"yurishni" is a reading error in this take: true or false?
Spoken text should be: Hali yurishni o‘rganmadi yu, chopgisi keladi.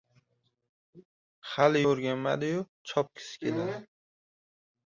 true